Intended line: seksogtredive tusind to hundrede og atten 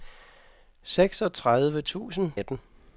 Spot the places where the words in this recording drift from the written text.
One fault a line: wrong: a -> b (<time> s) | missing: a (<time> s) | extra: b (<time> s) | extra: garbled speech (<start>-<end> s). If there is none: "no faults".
missing: to hundrede og (2.3 s)